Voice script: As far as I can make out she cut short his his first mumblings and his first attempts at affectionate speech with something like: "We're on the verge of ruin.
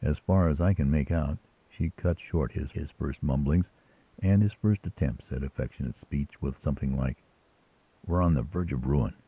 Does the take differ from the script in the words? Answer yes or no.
no